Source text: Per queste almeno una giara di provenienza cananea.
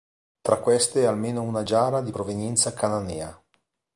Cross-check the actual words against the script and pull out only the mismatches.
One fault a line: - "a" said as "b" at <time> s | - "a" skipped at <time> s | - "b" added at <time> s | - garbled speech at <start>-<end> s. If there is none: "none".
- "Per" said as "Tra" at 0.4 s